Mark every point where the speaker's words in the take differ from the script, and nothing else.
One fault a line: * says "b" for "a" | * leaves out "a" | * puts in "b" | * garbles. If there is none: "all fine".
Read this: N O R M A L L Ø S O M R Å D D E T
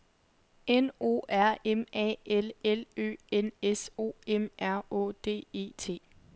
* puts in "N"
* leaves out "D"